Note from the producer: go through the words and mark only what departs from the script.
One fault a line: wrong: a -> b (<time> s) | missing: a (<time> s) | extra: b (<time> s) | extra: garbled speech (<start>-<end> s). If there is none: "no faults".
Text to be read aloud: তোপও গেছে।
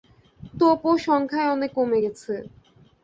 extra: সংখ্যায় অনেক কমে (1.1 s)